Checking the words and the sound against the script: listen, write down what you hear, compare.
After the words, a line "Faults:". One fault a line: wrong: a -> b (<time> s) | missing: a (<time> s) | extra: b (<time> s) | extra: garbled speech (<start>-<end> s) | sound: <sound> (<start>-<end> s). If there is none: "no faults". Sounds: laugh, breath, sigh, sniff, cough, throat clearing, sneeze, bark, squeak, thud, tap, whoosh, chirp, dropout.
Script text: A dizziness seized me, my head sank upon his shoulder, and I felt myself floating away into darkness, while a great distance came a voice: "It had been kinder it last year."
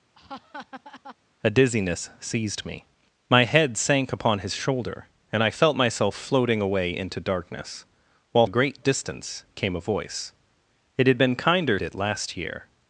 A dizziness seized me, my head sank upon his shoulder, and I felt myself floating away into darkness, while a great distance came a voice: "It had been kinder it last year."
Faults:
sound: laugh (0.1-1.2 s)